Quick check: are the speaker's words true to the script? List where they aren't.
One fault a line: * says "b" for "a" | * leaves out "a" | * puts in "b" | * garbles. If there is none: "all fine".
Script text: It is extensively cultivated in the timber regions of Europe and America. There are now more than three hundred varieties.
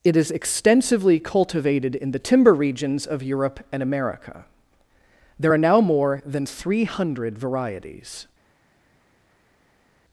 all fine